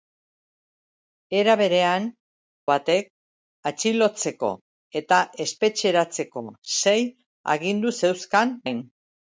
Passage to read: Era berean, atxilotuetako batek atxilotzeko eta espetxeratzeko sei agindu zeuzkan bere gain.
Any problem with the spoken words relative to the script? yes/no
yes